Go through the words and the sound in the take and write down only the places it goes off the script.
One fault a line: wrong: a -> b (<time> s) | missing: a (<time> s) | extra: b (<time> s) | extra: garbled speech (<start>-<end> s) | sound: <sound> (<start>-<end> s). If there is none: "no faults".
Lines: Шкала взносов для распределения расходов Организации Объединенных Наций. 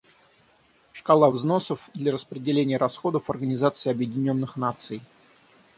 no faults